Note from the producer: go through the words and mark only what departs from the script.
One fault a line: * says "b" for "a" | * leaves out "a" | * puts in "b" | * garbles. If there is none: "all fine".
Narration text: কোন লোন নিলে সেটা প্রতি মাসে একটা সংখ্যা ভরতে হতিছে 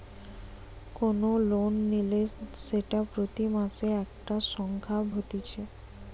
* leaves out "ভরতে"